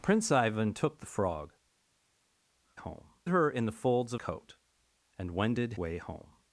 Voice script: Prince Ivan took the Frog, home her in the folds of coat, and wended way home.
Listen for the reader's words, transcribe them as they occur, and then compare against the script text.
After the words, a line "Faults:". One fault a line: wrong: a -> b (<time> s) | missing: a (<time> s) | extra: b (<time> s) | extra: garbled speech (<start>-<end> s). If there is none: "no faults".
Prince Ivan took the Frog, home her in the folds of coat, and wended way home.
Faults:
no faults